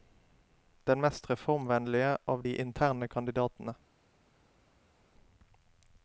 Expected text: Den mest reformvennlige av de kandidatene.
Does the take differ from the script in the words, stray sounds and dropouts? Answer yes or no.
yes